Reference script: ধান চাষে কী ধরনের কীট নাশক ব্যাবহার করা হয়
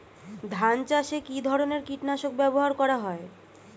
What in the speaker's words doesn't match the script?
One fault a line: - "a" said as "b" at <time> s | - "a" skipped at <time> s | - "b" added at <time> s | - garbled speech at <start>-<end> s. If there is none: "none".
none